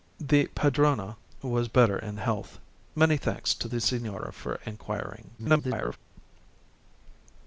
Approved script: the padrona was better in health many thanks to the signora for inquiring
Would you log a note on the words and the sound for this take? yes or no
yes